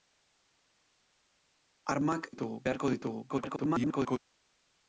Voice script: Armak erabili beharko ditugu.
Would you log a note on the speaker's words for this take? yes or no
yes